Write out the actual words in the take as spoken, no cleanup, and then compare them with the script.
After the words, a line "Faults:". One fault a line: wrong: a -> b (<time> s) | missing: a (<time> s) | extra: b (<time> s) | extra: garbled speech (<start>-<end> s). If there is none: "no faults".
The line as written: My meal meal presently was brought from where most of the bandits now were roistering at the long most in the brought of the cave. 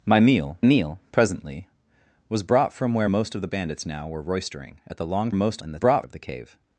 My meal meal presently was brought from where most of the bandits now were roistering at the long most in the brought of the cave.
Faults:
no faults